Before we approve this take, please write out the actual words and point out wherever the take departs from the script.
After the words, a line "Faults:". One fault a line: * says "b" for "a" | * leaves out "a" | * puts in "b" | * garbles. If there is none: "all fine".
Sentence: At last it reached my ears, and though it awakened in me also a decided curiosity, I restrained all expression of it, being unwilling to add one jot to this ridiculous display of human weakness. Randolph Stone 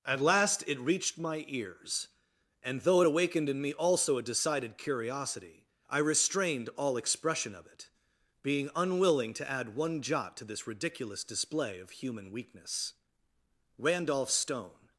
At last it reached my ears, and though it awakened in me also a decided curiosity, I restrained all expression of it, being unwilling to add one jot to this ridiculous display of human weakness. Randolph Stone
Faults:
all fine